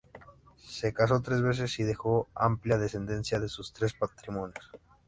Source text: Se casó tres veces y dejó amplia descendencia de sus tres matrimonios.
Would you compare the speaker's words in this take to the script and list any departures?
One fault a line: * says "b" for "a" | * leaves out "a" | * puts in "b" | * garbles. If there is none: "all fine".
all fine